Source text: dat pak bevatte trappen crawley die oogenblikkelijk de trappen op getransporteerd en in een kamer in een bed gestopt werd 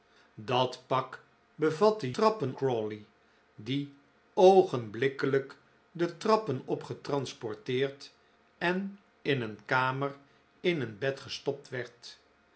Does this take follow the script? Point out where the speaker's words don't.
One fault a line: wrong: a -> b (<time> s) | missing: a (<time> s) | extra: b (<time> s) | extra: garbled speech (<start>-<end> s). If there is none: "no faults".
no faults